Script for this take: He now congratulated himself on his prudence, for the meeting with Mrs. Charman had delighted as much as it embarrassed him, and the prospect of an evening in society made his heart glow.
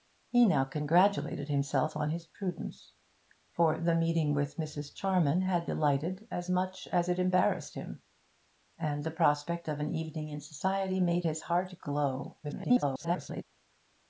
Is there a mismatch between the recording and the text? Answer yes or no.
yes